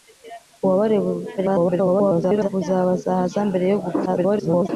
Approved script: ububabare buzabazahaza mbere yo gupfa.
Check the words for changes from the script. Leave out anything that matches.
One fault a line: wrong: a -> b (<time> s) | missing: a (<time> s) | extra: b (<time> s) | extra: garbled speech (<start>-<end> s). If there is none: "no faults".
extra: garbled speech (1.4-2.5 s)
extra: garbled speech (4.1-4.7 s)